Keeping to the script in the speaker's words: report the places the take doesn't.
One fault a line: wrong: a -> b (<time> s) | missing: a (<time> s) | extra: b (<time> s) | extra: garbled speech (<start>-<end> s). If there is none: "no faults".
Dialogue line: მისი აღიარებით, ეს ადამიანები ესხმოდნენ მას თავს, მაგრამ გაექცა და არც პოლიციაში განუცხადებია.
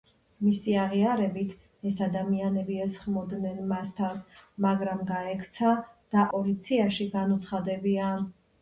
missing: არც (6.2 s)